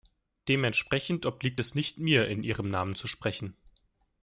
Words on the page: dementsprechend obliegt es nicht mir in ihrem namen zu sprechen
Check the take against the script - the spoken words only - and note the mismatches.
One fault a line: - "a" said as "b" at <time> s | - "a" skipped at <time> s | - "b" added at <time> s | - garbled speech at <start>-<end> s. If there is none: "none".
none